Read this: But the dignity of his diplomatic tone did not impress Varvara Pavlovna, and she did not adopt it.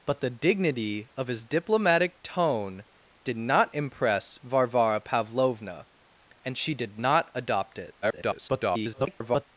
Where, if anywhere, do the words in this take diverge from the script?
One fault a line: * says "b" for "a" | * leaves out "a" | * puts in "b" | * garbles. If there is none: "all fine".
* garbles